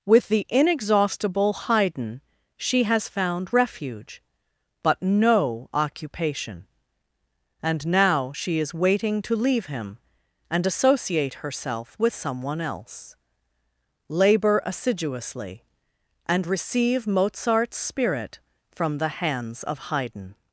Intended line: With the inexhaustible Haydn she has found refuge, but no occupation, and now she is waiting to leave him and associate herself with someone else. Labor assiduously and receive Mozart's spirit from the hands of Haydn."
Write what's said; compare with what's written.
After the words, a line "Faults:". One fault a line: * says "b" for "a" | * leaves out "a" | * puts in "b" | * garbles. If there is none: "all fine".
With the inexhaustible Haydn she has found refuge, but no occupation, and now she is waiting to leave him and associate herself with someone else. Labor assiduously and receive Mozart's spirit from the hands of Haydn."
Faults:
all fine